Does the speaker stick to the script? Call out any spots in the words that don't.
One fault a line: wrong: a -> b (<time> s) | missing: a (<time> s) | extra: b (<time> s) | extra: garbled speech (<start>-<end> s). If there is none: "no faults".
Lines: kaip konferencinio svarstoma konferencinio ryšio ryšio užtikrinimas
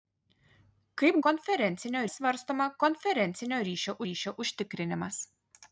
no faults